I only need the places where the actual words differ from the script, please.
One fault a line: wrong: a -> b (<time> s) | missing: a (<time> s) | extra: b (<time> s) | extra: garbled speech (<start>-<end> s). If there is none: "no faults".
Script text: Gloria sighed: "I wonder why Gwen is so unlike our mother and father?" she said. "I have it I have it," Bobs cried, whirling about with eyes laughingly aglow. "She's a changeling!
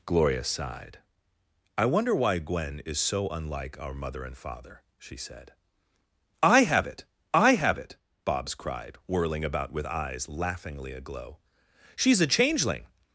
no faults